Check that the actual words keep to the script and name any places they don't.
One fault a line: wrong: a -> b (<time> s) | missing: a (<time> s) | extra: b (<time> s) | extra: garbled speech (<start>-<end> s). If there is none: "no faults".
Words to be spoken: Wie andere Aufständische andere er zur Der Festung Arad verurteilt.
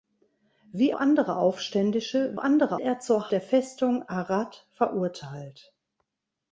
no faults